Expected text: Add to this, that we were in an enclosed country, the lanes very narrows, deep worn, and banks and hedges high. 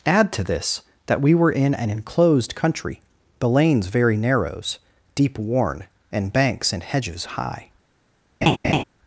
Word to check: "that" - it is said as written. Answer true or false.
true